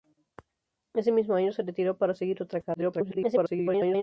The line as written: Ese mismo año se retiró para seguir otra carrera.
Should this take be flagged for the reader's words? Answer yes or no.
yes